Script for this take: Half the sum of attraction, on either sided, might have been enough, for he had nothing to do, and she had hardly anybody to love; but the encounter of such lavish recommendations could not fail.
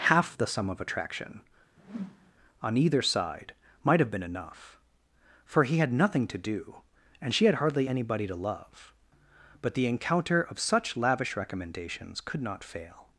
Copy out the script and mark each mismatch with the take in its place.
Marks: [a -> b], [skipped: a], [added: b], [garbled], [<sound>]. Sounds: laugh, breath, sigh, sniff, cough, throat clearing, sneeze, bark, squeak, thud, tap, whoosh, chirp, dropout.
Half the sum of attraction, [whoosh] on either [sided, -> side] might have been enough, for he had nothing to do, and she had hardly anybody to love; but the encounter of such lavish recommendations could not fail.